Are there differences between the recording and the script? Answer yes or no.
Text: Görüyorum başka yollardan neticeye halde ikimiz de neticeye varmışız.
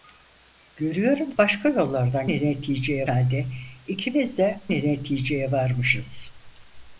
no